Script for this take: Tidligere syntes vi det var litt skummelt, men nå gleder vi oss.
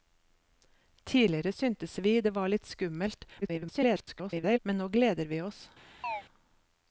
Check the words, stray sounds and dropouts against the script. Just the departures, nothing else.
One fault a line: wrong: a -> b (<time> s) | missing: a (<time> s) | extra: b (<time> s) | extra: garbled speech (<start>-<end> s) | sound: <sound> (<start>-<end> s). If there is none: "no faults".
extra: garbled speech (3.4-4.6 s)
sound: chirp (6.0-6.2 s)